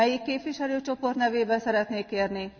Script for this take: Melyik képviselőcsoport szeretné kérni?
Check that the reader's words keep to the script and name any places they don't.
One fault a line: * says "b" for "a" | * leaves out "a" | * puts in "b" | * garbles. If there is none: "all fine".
* puts in "nevében"